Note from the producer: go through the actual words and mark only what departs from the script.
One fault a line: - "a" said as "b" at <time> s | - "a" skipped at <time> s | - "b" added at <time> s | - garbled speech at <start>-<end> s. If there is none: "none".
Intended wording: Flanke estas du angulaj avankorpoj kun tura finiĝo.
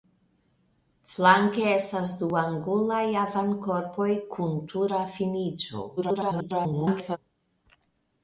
- garbled speech at 6.0-7.2 s